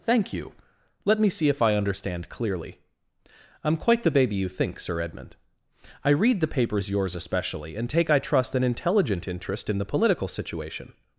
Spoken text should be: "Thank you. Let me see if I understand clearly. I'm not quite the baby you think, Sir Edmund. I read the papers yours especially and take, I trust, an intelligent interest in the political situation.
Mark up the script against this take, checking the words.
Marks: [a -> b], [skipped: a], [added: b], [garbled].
"Thank you. Let me see if I understand clearly. I'm [skipped: not] quite the baby you think, Sir Edmund. I read the papers yours especially and take, I trust, an intelligent interest in the political situation.